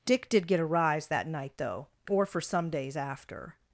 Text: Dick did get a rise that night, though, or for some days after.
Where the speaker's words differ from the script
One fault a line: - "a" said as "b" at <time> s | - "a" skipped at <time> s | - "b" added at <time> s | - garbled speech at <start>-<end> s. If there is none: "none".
none